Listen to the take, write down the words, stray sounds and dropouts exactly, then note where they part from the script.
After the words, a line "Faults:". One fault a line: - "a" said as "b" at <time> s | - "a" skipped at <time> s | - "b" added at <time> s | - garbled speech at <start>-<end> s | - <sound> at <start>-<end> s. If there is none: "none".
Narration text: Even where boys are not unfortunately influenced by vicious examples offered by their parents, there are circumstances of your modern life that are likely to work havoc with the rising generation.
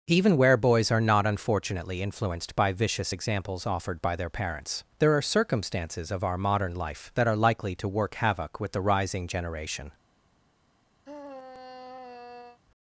Even where boys are not unfortunately influenced by vicious examples offered by their parents, there are circumstances of our modern life that are likely to work havoc with the rising generation.
Faults:
- "your" said as "our" at 6.2 s
- sigh at 11.0-12.6 s